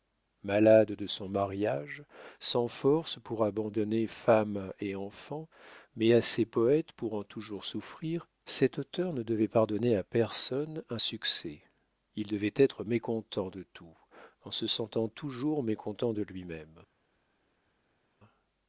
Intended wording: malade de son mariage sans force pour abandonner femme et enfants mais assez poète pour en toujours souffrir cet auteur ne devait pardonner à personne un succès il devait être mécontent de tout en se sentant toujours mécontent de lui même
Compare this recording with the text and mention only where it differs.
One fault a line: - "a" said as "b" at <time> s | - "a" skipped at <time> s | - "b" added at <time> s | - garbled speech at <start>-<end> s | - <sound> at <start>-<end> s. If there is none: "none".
none